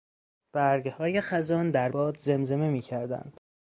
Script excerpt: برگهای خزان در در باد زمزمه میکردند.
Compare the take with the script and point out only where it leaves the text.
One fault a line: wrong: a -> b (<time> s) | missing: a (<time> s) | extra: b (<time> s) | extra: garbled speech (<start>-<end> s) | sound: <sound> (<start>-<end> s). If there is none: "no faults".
missing: در (1.9 s)